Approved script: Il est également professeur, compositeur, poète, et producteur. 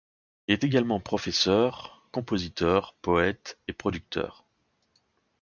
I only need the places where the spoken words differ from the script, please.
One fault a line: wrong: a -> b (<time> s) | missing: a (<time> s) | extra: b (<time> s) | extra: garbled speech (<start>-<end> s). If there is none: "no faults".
no faults